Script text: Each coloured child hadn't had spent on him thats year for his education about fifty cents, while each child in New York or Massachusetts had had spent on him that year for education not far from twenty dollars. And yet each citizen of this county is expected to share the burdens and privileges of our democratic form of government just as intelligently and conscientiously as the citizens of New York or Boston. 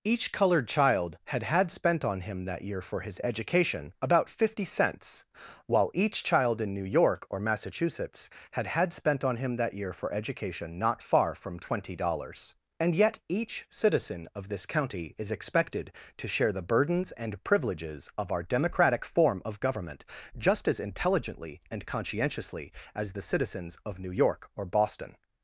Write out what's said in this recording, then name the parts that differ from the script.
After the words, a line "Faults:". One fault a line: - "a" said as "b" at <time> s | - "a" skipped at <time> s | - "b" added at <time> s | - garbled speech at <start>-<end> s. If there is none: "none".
Each coloured child had had spent on him that year for his education about fifty cents, while each child in New York or Massachusetts had had spent on him that year for education not far from twenty dollars. And yet each citizen of this county is expected to share the burdens and privileges of our democratic form of government just as intelligently and conscientiously as the citizens of New York or Boston.
Faults:
- "hadn't" said as "had" at 1.2 s
- "thats" said as "that" at 2.5 s